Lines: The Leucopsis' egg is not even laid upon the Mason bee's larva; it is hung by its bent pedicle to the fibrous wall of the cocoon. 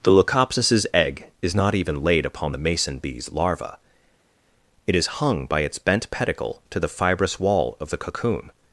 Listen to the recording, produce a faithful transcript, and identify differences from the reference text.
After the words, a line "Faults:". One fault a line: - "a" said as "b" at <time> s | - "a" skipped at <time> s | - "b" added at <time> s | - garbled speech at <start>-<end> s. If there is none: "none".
The Leucopsis' egg is not even laid upon the Mason bee's larva; it is hung by its bent pedicle to the fibrous wall of the cocoon.
Faults:
none